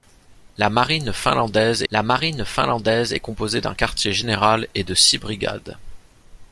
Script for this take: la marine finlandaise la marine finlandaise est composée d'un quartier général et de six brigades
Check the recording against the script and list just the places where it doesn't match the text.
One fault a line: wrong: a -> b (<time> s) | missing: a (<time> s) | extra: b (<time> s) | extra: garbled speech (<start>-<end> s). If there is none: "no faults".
no faults